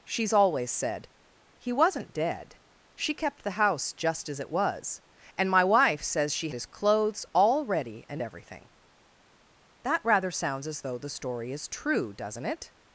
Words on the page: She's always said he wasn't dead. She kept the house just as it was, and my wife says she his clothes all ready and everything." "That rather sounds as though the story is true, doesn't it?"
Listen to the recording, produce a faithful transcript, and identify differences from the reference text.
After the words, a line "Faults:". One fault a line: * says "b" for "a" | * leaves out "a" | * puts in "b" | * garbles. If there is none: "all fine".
She's always said he wasn't dead. She kept the house just as it was, and my wife says she his clothes all ready and everything." "That rather sounds as though the story is true, doesn't it?"
Faults:
all fine